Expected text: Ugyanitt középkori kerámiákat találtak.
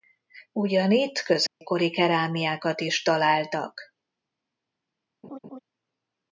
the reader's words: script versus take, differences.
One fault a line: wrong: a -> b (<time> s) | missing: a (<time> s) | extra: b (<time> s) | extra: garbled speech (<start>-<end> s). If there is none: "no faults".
extra: is (2.8 s)